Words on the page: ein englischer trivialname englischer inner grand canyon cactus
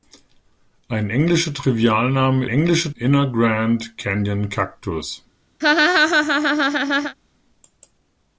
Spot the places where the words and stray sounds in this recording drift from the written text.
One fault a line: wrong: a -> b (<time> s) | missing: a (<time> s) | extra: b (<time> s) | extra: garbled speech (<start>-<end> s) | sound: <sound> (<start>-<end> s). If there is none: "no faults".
sound: laugh (5.6-7.2 s)